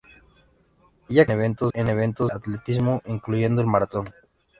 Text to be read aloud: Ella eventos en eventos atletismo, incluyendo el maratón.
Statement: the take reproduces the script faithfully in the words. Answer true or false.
true